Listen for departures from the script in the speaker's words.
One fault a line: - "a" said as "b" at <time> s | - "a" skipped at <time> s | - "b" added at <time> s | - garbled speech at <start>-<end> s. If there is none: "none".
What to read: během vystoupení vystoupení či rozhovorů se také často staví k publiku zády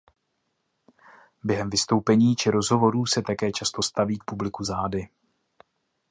- "vystoupení" skipped at 2.4 s